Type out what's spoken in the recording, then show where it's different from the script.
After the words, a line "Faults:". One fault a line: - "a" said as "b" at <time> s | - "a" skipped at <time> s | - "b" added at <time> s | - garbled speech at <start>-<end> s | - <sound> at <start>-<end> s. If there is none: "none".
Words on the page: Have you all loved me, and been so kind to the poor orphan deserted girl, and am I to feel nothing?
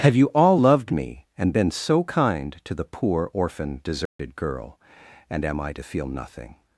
Have you all loved me, and been so kind to the poor orphan deserted girl, and am I to feel nothing?
Faults:
- dropout at 4.1-4.2 s